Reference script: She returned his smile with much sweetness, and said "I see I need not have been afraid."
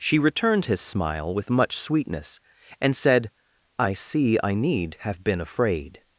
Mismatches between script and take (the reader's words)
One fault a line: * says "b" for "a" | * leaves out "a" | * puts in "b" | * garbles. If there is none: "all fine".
* leaves out "not"